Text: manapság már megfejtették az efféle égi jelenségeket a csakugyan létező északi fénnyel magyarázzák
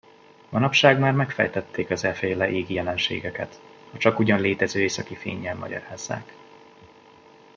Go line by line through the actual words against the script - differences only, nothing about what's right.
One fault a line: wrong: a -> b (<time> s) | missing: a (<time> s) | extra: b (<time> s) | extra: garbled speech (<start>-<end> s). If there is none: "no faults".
no faults